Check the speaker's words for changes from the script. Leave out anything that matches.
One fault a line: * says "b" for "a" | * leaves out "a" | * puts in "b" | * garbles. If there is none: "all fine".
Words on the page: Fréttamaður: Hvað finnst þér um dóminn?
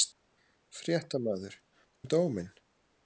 * leaves out "Hvað finnst þér"